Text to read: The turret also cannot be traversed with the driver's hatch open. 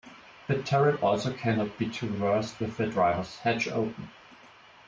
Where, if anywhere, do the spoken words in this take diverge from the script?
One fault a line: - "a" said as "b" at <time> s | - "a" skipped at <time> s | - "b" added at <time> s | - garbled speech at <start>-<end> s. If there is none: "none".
none